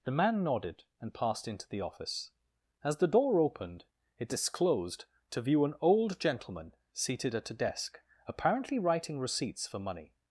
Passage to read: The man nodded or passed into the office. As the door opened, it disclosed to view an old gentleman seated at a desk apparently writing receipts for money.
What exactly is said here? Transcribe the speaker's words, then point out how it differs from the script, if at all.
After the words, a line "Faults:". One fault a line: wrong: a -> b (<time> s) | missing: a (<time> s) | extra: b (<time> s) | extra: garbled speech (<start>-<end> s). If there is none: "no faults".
The man nodded and passed into the office. As the door opened, it disclosed to view an old gentleman seated at a desk apparently writing receipts for money.
Faults:
wrong: or -> and (1.0 s)